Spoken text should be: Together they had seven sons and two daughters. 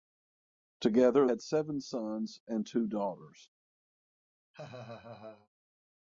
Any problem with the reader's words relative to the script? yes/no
yes